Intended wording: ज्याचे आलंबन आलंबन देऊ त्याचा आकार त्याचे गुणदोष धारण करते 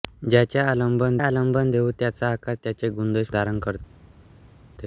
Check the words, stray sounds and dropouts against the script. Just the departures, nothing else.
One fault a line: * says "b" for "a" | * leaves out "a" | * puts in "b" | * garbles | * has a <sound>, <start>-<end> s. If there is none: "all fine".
all fine